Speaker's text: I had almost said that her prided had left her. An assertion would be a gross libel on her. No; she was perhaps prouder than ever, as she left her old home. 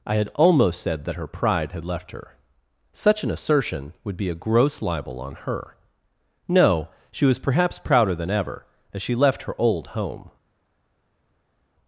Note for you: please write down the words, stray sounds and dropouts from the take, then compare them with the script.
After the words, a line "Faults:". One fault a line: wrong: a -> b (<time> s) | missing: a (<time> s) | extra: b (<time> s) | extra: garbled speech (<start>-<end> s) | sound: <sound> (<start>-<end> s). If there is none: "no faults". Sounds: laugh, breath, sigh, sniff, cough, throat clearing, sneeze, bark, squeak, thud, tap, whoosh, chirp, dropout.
I had almost said that her pride had left her. Such an assertion would be a gross libel on her. No; she was perhaps prouder than ever, as she left her old home.
Faults:
wrong: prided -> pride (1.3 s)
extra: Such (2.9 s)